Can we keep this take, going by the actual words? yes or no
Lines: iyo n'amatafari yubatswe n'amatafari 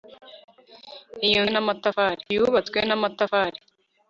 yes